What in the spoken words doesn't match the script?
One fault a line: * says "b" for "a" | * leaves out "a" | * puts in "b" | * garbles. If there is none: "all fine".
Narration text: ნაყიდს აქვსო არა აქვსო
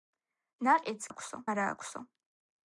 all fine